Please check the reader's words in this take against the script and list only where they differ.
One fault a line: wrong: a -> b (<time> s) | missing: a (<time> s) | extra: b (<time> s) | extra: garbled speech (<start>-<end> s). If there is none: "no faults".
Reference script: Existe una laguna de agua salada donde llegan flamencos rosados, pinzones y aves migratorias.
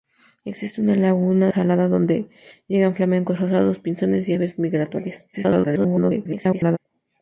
missing: de agua (1.5 s)
extra: garbled speech (5.3-6.8 s)